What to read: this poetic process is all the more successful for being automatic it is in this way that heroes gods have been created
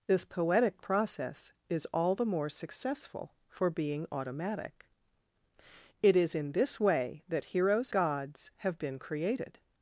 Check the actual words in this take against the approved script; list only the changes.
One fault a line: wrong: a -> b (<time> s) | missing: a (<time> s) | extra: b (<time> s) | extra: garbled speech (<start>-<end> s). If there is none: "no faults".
no faults